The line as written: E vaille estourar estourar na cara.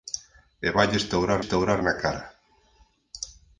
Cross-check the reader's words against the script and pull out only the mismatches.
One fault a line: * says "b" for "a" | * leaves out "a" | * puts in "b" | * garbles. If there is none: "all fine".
all fine